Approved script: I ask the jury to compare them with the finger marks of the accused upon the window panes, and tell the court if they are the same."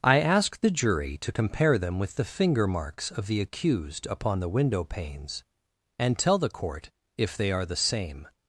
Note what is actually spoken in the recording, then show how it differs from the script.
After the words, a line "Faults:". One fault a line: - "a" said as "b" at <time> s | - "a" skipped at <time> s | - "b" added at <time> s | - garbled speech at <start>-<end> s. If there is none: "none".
I ask the jury to compare them with the finger marks of the accused upon the window panes, and tell the court if they are the same."
Faults:
none